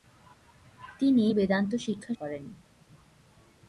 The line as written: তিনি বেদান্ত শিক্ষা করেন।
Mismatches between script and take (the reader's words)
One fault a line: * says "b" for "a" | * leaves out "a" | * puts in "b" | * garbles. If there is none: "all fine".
all fine